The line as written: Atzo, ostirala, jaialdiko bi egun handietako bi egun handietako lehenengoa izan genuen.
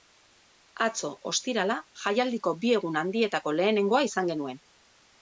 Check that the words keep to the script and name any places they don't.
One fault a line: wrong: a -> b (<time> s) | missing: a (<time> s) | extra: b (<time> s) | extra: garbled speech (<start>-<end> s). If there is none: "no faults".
missing: bi egun handietako (3.6 s)